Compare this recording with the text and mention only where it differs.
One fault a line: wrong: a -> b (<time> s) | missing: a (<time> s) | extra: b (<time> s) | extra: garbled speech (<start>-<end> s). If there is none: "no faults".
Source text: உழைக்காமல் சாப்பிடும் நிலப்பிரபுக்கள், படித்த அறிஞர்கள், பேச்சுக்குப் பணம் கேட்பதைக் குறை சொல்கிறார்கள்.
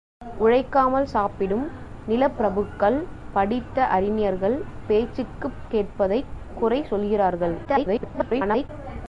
missing: பணம் (5.6 s)
extra: garbled speech (7.6-8.7 s)